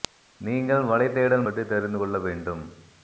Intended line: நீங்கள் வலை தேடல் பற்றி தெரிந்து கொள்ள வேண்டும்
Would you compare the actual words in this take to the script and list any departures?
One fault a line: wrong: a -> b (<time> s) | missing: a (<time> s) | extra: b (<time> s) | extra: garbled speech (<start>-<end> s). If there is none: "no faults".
no faults